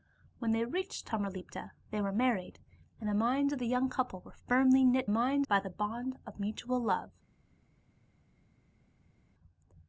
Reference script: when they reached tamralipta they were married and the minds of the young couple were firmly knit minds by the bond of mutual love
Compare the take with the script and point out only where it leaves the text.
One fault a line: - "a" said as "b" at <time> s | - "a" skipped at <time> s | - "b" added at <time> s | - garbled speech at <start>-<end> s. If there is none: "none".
none